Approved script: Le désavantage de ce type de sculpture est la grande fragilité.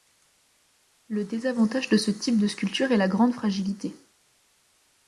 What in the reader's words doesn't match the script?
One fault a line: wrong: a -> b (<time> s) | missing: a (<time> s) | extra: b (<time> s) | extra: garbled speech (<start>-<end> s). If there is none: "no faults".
no faults